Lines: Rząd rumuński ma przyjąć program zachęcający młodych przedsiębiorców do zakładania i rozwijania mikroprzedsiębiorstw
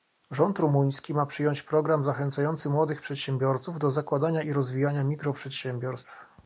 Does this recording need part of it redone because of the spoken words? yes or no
no